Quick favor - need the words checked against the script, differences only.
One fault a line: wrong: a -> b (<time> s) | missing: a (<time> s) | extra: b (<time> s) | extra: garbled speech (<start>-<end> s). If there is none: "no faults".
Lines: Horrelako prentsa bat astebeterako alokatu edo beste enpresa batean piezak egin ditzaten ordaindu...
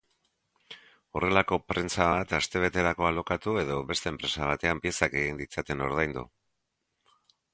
no faults